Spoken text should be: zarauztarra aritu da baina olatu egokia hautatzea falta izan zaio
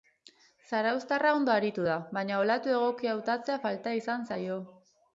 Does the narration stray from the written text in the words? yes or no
yes